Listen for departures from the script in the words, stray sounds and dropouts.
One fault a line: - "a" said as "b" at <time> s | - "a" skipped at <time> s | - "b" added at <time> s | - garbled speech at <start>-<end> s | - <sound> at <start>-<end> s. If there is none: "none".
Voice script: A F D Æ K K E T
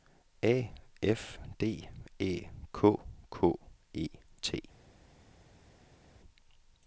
none